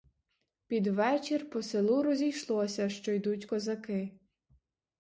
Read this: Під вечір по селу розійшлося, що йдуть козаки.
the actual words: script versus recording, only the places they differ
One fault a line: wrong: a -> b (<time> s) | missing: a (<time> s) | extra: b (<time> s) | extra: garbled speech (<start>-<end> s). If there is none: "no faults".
no faults